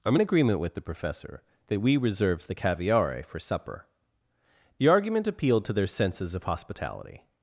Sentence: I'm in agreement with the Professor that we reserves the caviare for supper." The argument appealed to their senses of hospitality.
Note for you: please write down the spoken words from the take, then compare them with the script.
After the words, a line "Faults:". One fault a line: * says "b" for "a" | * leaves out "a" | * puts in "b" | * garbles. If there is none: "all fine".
I'm in agreement with the Professor that we reserves the caviare for supper." The argument appealed to their senses of hospitality.
Faults:
all fine